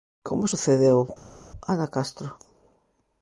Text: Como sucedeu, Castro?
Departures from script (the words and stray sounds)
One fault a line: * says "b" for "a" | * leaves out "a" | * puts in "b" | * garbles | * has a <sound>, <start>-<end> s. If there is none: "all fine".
* puts in "Ana"